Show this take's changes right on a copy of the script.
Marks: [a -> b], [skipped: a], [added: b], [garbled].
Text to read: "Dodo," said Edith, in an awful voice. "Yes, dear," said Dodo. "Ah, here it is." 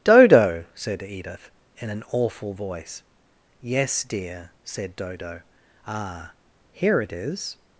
"Dodo," said Edith, in an awful voice. "Yes, dear," said Dodo. "Ah, here it is."